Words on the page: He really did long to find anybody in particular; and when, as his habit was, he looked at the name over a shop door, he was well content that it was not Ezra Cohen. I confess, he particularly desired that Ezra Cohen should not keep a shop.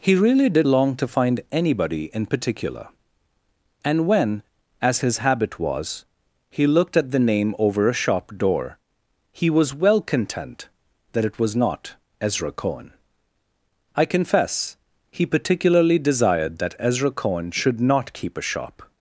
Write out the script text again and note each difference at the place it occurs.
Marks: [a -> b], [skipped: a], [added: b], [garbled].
He really did long to find anybody in particular; and when, as his habit was, he looked at the name over a shop door, he was well content that it was not Ezra Cohen. I confess, he particularly desired that Ezra Cohen should not keep a shop.